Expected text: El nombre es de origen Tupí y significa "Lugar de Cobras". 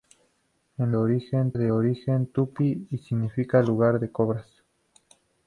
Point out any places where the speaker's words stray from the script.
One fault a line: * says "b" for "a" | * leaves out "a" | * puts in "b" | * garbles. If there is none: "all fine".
* says "origen" for "nombre"